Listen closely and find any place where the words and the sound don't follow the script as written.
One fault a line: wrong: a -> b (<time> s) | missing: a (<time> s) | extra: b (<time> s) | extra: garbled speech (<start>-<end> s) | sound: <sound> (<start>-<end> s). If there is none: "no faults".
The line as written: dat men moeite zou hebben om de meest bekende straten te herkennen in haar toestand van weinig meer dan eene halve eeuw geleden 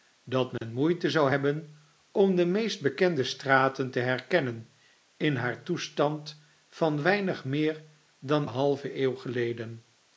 sound: dropout (0.6-0.6 s)
missing: eene (8.5 s)